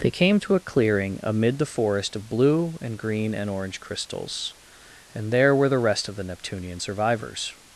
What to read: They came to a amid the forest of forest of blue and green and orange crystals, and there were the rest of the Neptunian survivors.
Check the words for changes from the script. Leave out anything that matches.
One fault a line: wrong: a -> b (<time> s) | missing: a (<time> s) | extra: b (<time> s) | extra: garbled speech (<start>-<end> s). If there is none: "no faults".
extra: clearing (0.6 s)
missing: forest of (2.3 s)